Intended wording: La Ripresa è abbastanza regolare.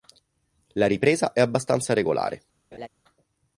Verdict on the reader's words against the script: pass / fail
pass